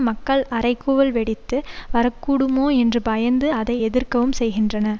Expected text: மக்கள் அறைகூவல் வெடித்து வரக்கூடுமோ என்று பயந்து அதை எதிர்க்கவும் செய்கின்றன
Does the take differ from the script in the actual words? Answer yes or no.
no